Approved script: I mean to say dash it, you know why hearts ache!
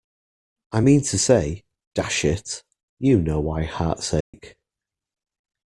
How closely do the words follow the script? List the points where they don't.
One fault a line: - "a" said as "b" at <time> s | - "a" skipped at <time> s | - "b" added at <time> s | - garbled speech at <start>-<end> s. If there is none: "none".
none